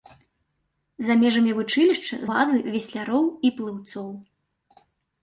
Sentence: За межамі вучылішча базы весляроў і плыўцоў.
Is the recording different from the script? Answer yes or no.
no